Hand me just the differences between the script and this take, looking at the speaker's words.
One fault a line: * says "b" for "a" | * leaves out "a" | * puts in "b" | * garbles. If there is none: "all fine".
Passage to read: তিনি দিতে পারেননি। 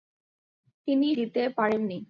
all fine